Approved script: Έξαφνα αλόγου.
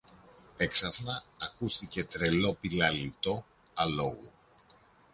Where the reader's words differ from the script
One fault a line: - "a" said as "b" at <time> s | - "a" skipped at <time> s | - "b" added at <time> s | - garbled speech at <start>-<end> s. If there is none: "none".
- "ακούστηκε τρελό πηλαλητό" added at 1.4 s